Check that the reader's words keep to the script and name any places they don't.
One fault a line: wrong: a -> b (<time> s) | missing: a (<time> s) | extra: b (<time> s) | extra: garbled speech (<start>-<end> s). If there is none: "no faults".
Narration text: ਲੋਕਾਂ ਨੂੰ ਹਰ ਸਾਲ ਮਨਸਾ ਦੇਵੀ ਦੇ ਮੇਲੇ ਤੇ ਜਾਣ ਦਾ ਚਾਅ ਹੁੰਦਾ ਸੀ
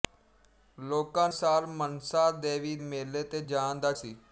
missing: ਨੂੰ ਹਰ (1.3 s)
missing: ਦੇ (2.8 s)
missing: ਚਾਅ ਹੁੰਦਾ (3.9 s)